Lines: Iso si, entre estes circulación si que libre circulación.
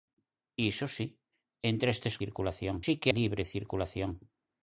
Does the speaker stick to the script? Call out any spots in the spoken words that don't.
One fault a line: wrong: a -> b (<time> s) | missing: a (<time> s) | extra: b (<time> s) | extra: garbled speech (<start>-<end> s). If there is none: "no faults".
no faults